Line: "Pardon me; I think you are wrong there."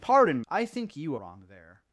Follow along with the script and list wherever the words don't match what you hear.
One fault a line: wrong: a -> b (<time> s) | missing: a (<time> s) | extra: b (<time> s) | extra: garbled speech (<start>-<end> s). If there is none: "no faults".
missing: me (0.4 s)
missing: are (1.2 s)